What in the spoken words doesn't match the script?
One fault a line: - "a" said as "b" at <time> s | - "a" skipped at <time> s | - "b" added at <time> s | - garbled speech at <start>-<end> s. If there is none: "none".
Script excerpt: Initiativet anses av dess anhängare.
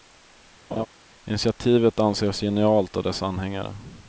- "genialt" added at 2.4 s